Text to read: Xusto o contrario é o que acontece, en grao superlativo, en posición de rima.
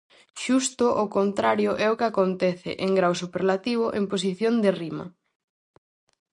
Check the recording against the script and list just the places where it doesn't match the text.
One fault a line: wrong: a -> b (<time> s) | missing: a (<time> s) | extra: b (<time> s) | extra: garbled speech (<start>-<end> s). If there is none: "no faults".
no faults